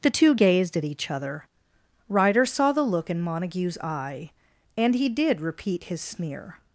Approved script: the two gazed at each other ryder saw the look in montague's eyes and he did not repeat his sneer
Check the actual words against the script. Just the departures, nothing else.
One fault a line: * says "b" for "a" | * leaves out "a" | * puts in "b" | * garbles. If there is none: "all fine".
* says "eye" for "eyes"
* leaves out "not"